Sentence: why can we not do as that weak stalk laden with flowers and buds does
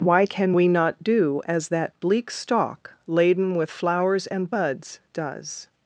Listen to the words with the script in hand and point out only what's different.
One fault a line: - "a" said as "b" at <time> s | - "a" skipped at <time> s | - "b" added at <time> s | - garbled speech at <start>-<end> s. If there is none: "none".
- "weak" said as "bleak" at 2.0 s